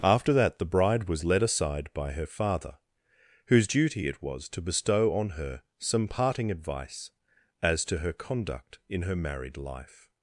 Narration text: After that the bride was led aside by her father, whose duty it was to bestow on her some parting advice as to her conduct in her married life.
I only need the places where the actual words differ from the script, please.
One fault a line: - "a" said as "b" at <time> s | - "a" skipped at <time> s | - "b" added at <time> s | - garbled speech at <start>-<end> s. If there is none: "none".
none